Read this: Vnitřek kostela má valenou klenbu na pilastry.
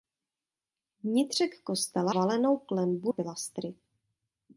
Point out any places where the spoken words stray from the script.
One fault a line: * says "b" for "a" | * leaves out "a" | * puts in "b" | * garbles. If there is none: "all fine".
* leaves out "má"
* leaves out "na"